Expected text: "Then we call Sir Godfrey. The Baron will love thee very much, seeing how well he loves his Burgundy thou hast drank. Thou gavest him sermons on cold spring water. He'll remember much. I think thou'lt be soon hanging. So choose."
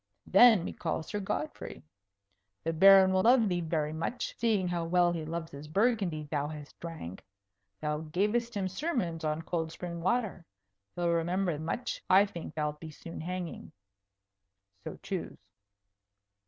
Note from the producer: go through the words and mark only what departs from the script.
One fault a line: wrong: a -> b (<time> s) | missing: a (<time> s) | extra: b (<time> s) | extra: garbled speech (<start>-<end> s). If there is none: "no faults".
no faults